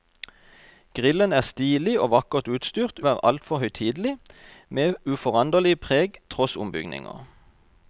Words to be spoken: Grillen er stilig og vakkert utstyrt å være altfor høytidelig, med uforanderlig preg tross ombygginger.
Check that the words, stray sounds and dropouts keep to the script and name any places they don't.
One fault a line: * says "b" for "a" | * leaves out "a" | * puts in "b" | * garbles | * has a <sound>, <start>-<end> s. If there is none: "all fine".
all fine